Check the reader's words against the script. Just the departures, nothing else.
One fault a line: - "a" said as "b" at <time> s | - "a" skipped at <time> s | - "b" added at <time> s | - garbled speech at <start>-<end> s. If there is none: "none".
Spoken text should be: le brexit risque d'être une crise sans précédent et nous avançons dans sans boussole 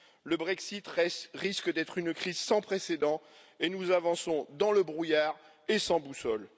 - "le brouillard et" added at 4.7 s